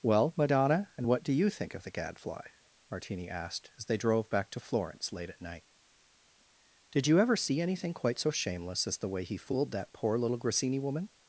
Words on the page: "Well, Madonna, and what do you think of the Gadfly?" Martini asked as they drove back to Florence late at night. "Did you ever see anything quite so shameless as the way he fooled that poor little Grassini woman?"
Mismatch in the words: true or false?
false